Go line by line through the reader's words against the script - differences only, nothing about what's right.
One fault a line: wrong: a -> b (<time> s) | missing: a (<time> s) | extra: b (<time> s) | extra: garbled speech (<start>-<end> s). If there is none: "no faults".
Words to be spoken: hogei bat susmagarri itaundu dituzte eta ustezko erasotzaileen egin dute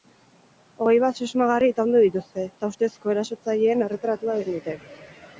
extra: erretratua (3.9 s)